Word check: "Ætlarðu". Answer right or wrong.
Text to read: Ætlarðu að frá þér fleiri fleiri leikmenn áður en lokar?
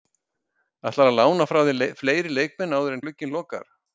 right